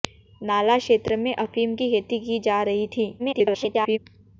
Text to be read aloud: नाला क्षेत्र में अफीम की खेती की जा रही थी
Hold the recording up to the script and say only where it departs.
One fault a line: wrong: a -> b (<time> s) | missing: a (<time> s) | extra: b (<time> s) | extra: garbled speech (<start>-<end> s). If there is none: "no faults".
extra: garbled speech (3.2-4.0 s)